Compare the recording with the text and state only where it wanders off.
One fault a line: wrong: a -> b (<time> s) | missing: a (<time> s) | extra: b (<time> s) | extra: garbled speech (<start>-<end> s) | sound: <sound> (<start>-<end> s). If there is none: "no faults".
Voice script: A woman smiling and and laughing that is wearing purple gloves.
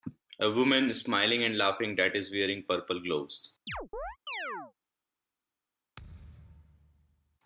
missing: and (1.6 s)
sound: chirp (3.7-4.7 s)
sound: thud (6.0-7.4 s)